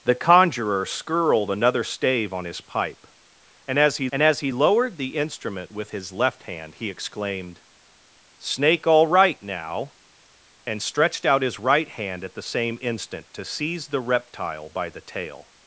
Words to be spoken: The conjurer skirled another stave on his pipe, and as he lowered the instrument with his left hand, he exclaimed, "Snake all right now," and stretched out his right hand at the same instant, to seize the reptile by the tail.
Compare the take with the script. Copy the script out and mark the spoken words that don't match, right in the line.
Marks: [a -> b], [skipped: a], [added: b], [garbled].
The conjurer skirled another stave on his pipe, and as he [added: and as he] lowered the instrument with his left hand, he exclaimed, "Snake all right now," and stretched out his right hand at the same instant, to seize the reptile by the tail.